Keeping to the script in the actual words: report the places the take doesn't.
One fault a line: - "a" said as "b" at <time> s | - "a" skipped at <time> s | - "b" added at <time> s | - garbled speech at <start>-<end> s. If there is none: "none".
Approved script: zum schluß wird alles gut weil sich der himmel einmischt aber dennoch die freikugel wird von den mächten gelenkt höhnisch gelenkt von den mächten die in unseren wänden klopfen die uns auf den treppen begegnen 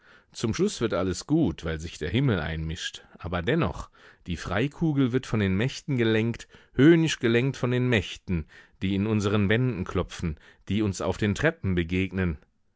none